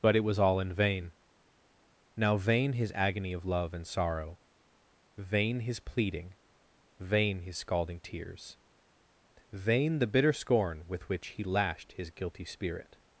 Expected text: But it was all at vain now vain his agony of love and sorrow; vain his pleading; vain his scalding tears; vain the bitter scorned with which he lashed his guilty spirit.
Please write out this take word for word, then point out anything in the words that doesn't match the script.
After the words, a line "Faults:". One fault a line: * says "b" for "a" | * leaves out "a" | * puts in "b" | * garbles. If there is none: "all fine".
But it was all in vain now vain his agony of love and sorrow; vain his pleading; vain his scalding tears; vain the bitter scorn with which he lashed his guilty spirit.
Faults:
* says "in" for "at"
* says "scorn" for "scorned"